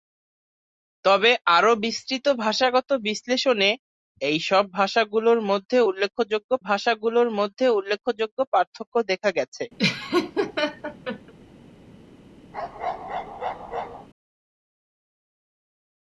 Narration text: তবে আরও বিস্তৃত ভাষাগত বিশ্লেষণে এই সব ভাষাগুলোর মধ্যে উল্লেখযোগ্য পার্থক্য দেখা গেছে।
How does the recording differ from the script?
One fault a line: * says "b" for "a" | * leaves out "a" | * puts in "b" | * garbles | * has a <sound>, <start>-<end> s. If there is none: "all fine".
* puts in "ভাষাগুলোর মধ্যে উল্লেখযোগ্য"
* has a laugh, 9.8-11.3 s
* has a bark, 12.5-14.1 s